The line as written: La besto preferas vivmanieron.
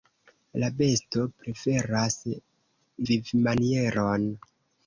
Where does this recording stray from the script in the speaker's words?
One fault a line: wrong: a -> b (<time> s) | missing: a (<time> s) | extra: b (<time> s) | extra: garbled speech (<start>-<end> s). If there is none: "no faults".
no faults